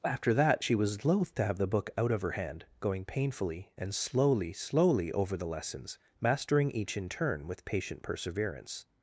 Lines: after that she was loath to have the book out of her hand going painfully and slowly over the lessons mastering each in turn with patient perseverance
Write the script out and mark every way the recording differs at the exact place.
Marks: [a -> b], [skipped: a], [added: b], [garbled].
after that she was loath to have the book out of her hand going painfully and slowly [added: slowly] over the lessons mastering each in turn with patient perseverance